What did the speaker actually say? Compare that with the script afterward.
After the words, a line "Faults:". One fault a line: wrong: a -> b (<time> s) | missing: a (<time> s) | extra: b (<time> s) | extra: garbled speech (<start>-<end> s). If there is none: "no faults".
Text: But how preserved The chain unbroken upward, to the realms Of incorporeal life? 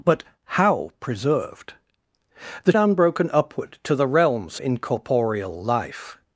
But how preserved The unbroken upward, to the realms Incorporeal life?
Faults:
missing: chain (2.7 s)
missing: Of (4.6 s)